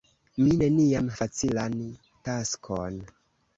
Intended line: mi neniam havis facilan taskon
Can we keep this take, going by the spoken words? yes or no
no